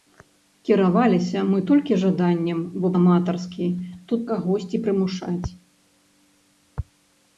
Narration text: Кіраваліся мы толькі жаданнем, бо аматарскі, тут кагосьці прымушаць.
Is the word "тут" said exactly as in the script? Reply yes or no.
yes